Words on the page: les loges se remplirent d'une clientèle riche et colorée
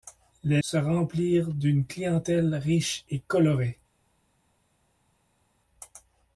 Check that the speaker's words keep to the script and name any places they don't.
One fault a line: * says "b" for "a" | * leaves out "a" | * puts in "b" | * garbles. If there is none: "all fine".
* leaves out "loges"